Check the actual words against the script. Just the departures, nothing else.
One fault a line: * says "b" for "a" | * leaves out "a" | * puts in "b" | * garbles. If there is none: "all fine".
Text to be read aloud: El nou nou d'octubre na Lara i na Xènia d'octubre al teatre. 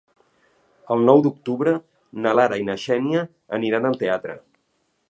* leaves out "nou"
* says "aniran" for "d'octubre"